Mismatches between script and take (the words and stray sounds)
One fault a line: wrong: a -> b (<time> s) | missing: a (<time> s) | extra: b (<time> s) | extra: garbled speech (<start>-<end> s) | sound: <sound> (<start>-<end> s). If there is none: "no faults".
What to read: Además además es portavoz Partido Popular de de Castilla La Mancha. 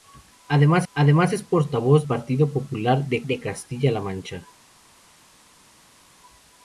no faults